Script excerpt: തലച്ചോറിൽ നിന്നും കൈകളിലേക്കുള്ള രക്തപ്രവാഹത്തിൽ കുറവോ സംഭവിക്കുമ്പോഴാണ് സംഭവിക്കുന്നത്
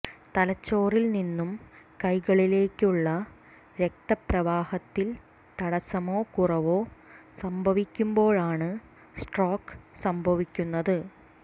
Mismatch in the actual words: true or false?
true